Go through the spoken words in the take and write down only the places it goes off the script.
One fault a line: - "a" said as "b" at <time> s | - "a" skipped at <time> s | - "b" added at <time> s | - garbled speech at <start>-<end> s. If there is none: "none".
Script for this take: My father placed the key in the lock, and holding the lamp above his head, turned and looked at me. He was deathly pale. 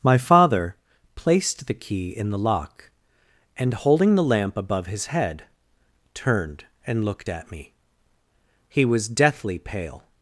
none